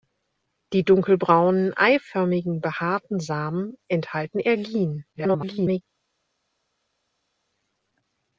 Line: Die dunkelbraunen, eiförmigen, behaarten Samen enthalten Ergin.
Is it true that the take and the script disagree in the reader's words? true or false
true